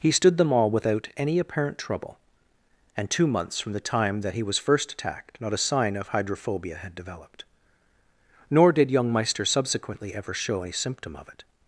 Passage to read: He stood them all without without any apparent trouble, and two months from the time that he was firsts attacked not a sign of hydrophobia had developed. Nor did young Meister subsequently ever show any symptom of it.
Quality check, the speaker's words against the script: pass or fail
fail